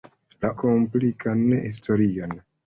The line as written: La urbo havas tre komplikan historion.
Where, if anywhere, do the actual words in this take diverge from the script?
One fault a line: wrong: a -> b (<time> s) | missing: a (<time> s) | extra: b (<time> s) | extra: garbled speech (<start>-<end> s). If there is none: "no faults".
missing: urbo havas tre (0.5 s)